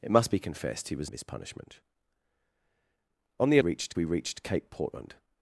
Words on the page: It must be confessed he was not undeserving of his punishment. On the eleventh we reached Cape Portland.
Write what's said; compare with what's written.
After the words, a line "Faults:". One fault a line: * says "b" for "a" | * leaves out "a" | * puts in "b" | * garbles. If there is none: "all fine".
It must be confessed he was of his punishment. On the reached we reached Cape Portland.
Faults:
* leaves out "not undeserving"
* says "reached" for "eleventh"